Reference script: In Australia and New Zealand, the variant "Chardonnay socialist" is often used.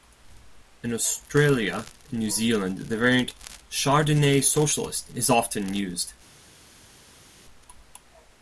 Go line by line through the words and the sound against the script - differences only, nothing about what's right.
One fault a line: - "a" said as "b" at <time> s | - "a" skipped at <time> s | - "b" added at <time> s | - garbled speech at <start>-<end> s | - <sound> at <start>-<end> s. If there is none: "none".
none